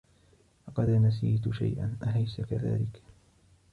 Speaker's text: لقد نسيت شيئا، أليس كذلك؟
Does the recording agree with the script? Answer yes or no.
yes